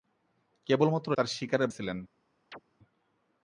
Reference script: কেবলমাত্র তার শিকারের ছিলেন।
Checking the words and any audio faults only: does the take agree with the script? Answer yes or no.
no